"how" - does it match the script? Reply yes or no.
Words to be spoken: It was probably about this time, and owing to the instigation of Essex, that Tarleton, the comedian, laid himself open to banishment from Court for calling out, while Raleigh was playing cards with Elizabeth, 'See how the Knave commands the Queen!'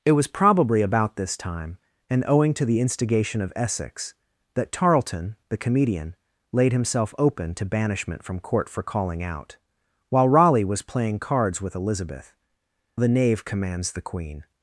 no